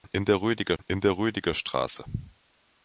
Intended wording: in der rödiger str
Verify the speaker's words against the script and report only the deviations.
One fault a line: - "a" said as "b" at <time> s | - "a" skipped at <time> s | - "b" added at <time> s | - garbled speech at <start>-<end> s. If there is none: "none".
- "in der rödiger" added at 0.8 s